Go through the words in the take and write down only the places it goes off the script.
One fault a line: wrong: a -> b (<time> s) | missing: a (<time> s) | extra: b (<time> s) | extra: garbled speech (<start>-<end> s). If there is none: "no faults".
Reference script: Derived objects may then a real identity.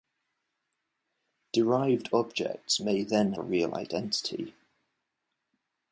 no faults